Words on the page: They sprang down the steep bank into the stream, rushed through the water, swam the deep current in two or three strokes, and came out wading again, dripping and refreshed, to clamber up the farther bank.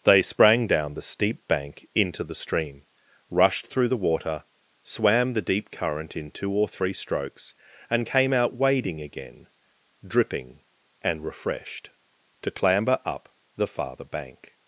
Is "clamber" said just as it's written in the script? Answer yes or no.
yes